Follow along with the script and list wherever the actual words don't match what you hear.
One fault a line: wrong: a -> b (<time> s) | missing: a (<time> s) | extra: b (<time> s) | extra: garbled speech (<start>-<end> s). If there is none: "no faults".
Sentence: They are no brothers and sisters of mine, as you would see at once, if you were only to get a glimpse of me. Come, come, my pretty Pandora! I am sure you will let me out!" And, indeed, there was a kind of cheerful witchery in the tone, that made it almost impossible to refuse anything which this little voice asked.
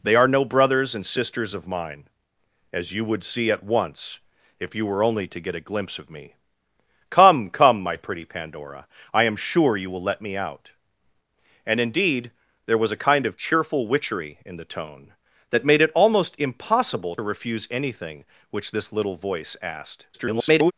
missing: to (17.1 s)
extra: garbled speech (20.1-20.7 s)